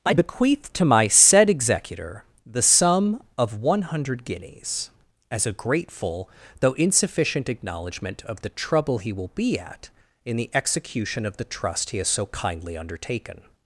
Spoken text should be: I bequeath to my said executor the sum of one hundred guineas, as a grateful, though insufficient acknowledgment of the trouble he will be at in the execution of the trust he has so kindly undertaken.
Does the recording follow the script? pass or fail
pass